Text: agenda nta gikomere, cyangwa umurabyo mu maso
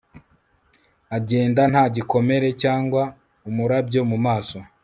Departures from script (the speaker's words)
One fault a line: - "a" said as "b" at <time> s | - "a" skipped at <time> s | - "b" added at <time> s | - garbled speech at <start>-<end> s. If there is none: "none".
none